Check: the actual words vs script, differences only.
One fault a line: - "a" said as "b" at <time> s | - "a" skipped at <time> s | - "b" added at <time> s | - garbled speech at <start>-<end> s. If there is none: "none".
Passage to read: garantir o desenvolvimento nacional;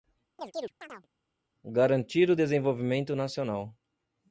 none